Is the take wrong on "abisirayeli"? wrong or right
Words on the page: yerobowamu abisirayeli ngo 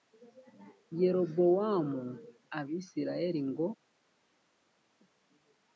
right